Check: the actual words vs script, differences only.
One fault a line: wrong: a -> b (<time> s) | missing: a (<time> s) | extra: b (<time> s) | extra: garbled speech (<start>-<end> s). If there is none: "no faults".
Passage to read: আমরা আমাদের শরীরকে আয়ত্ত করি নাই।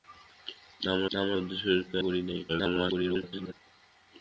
extra: আমরা (1.1 s)
missing: আয়ত্ত (2.0 s)
extra: garbled speech (2.5-3.5 s)